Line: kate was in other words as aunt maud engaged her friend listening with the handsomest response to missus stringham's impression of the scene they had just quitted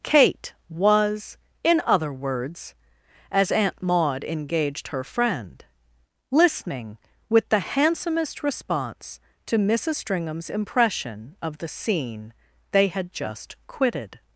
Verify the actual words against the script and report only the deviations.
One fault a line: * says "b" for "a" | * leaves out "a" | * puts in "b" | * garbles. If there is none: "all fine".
all fine